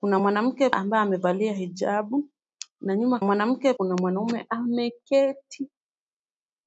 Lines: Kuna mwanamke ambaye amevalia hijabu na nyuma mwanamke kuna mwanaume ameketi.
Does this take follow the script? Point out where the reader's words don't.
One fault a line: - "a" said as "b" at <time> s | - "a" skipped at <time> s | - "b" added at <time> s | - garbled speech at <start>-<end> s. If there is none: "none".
none